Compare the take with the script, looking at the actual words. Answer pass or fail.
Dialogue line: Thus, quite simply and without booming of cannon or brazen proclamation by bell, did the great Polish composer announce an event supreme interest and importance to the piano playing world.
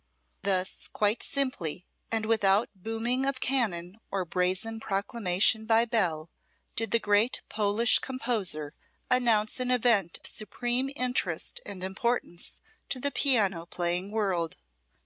pass